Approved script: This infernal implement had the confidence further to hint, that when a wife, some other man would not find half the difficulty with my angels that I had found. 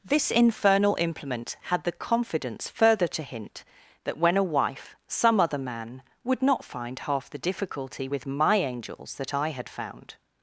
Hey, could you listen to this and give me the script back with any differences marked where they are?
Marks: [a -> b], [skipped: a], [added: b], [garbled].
This infernal implement had the confidence further to hint, that when a wife, some other man would not find half the difficulty with my angels that I had found.